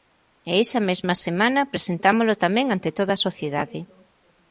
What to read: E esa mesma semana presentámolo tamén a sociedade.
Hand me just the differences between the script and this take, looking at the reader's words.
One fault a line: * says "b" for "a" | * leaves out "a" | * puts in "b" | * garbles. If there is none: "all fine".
* puts in "ante toda"